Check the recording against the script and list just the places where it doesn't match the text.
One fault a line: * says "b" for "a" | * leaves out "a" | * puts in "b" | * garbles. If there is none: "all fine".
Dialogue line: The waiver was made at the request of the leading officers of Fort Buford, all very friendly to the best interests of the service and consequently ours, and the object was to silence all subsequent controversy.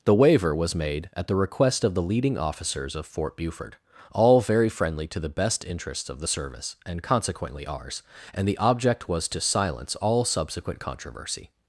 all fine